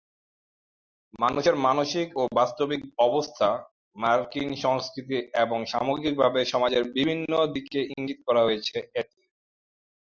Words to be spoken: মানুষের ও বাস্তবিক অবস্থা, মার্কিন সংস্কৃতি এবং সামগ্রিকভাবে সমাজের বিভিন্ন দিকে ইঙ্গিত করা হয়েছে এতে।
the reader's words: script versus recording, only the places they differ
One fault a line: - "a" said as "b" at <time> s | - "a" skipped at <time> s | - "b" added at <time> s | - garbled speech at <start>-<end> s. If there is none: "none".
- "মানসিক" added at 1.7 s